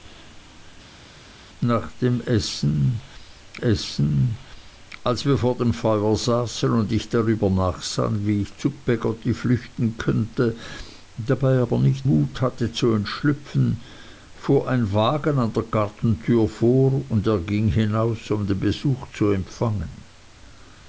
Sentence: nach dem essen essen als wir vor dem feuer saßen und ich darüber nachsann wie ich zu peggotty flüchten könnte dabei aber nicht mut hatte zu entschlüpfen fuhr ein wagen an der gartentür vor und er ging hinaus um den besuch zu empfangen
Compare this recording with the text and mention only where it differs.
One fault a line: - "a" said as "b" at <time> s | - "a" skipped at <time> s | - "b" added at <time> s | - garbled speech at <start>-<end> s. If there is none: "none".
none